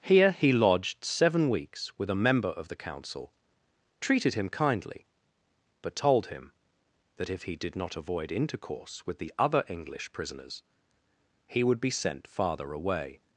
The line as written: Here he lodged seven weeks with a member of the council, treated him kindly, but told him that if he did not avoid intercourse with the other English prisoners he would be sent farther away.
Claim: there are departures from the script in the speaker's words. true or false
false